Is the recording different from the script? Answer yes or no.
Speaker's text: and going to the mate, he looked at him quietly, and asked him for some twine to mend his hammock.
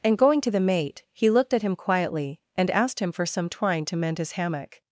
no